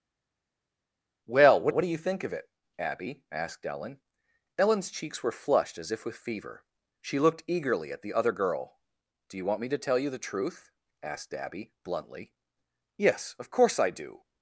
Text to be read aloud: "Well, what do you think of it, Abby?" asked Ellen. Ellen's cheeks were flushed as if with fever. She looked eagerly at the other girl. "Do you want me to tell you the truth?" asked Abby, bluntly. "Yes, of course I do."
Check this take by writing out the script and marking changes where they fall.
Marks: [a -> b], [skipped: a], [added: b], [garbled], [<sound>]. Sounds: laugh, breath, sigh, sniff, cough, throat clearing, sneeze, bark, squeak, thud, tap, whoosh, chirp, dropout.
"Well, what [added: what] do you think of it, Abby?" asked Ellen. Ellen's cheeks were flushed as if with fever. She looked eagerly at the other girl. "Do you want me to tell you the truth?" asked Abby, bluntly. "Yes, of course I do."